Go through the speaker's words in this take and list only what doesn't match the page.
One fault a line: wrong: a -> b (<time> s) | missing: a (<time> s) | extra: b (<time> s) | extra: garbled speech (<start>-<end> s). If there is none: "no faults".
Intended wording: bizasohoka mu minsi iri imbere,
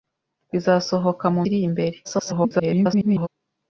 missing: minsi (1.4 s)
extra: garbled speech (2.0-3.3 s)